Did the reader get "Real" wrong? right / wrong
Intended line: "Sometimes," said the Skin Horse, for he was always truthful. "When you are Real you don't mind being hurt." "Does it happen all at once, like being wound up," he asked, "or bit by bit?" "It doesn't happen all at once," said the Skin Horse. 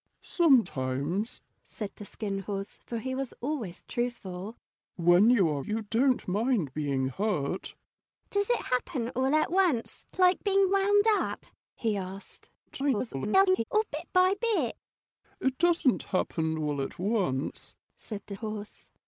wrong